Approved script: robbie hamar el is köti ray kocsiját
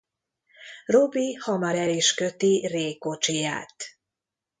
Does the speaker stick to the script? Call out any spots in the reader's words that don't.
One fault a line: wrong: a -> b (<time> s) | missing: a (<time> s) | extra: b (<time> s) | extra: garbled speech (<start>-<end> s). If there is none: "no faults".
no faults